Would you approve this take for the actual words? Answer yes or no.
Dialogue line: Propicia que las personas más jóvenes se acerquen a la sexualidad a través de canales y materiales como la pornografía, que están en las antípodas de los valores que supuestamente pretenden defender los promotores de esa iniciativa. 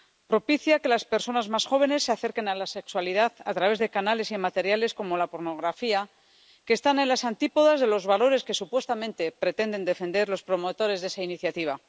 yes